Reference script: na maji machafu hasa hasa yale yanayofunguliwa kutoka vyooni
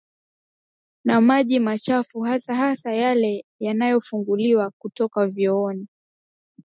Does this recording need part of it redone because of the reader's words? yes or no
no